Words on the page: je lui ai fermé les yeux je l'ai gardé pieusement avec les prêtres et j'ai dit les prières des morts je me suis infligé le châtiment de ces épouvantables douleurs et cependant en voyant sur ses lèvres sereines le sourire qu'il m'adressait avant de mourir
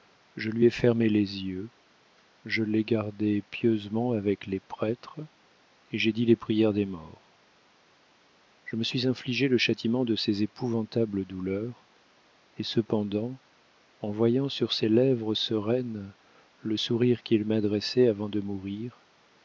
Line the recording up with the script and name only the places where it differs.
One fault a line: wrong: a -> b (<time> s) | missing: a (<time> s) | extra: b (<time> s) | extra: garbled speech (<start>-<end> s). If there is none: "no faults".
no faults